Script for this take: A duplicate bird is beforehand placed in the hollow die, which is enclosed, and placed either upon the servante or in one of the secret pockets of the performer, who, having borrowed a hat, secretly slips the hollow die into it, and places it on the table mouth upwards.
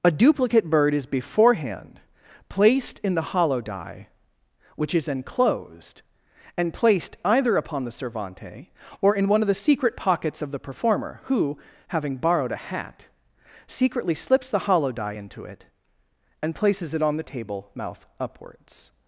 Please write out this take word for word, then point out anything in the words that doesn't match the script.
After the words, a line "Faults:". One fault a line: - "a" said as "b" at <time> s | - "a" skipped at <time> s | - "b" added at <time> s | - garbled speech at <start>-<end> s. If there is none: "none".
A duplicate bird is beforehand placed in the hollow die, which is enclosed, and placed either upon the servante or in one of the secret pockets of the performer, who, having borrowed a hat, secretly slips the hollow die into it, and places it on the table mouth upwards.
Faults:
none